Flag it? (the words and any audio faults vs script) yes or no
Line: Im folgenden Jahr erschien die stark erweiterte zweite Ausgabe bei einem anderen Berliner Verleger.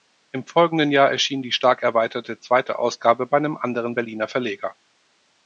no